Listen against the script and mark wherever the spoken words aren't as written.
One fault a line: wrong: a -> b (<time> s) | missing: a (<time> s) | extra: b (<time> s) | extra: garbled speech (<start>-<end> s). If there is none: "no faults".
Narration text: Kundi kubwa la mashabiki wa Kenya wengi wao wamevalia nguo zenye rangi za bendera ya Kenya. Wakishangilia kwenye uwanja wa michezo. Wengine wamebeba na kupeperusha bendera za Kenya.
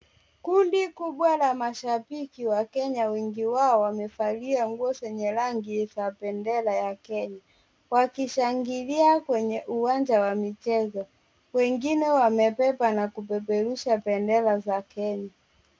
no faults